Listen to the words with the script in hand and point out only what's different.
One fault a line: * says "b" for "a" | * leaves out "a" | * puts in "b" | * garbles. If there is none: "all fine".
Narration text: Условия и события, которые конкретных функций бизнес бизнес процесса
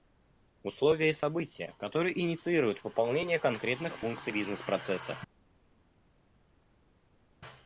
* puts in "инициируют выполнение"
* leaves out "бизнес"